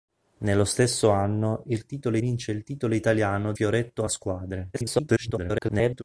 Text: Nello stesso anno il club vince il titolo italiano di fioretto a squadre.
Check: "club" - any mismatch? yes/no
yes